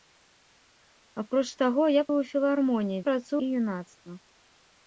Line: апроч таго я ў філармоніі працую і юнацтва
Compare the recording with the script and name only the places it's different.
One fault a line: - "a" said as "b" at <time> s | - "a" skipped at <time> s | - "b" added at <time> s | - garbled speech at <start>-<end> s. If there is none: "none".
none